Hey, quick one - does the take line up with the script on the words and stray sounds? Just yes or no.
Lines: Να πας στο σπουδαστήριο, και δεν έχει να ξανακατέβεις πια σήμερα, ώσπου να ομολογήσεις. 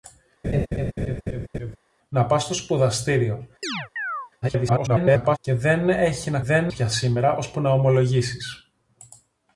no